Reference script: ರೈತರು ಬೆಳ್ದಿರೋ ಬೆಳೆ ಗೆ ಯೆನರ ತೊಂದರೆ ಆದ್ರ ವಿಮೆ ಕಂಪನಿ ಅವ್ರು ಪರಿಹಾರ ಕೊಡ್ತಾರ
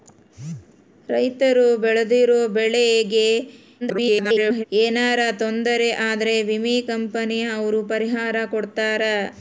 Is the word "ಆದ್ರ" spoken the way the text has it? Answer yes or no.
yes